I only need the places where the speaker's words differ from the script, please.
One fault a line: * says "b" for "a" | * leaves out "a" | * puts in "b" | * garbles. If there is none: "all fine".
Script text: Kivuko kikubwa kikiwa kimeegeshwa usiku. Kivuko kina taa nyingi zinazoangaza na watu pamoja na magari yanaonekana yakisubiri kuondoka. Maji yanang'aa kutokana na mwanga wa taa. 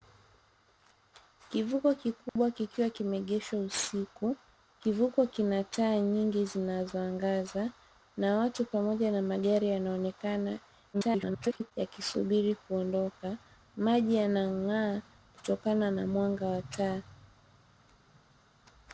* garbles